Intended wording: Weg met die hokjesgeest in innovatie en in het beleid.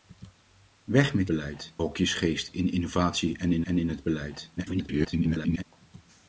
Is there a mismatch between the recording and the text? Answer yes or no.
yes